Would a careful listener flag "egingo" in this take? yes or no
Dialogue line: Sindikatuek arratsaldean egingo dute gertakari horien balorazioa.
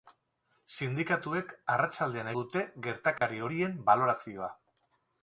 yes